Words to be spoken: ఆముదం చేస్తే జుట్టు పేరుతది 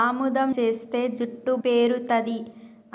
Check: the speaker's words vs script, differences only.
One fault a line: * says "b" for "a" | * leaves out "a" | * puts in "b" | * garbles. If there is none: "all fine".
all fine